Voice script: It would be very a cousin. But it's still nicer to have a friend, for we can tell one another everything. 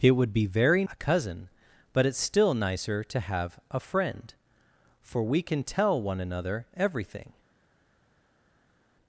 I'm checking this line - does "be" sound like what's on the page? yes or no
yes